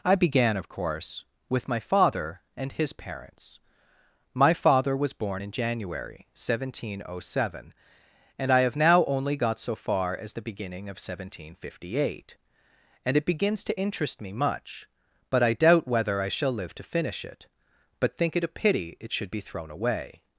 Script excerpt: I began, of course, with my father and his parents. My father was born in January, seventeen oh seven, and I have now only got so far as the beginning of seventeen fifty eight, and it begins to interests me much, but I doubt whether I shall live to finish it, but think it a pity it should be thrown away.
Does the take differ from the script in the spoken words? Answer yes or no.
yes